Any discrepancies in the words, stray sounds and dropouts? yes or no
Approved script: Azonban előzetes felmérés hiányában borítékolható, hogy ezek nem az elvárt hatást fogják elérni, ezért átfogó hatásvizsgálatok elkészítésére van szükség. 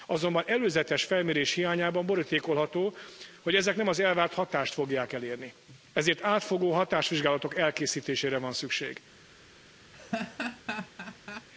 yes